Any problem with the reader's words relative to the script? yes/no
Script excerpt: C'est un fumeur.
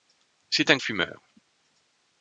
no